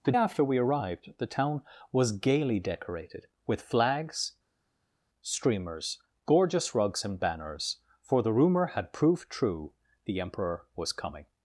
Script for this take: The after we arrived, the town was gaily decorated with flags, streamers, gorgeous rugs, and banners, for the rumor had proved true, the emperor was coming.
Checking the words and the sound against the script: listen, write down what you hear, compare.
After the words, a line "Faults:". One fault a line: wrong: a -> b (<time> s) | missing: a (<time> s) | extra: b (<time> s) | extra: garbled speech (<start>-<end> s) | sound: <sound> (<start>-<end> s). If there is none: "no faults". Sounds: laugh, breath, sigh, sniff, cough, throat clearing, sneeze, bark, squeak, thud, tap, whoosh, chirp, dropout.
The after we arrived, the town was gaily decorated with flags, streamers, gorgeous rugs, and banners, for the rumor had proved true, the emperor was coming.
Faults:
no faults